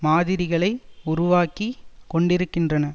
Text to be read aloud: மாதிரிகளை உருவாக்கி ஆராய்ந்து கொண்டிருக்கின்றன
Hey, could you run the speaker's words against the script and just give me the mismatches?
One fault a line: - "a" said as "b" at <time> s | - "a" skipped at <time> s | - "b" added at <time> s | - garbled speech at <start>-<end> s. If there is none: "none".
- "ஆராய்ந்து" skipped at 1.7 s